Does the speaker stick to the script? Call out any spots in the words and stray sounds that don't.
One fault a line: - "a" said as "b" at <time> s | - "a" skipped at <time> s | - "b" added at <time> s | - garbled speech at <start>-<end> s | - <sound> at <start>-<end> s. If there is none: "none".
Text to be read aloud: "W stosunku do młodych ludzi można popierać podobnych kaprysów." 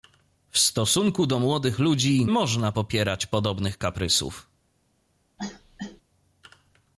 - cough at 5.4-6.0 s